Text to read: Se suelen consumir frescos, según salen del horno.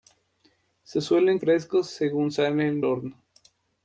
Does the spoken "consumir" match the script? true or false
false